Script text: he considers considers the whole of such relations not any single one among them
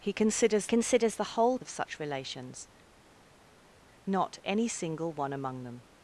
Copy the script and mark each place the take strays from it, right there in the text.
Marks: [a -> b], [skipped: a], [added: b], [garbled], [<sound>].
he considers considers the whole of such relations not any single one among them